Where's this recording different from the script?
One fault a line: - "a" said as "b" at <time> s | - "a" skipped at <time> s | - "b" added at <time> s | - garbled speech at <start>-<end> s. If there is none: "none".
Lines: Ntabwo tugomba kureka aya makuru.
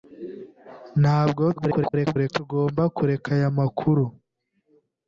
- garbled speech at 1.6-2.3 s